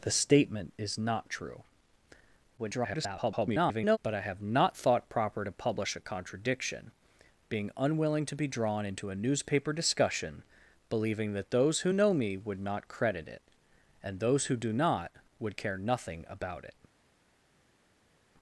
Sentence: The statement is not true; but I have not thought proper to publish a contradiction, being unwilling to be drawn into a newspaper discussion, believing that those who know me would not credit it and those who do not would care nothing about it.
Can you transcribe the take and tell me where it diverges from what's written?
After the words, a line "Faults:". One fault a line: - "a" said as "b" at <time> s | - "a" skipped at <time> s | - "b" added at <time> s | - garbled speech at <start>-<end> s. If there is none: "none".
The statement is not true; [garbled] but I have not thought proper to publish a contradiction, being unwilling to be drawn into a newspaper discussion, believing that those who know me would not credit it and those who do not would care nothing about it.
Faults:
- garbled speech at 2.6-4.0 s